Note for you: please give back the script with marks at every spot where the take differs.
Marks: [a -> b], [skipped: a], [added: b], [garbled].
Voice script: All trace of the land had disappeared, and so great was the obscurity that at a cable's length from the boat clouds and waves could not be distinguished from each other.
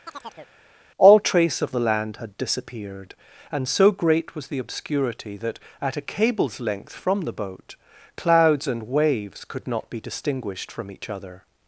All trace of the land had disappeared, and so great was the obscurity that at a cable's length from the boat clouds and waves could not be distinguished from each other.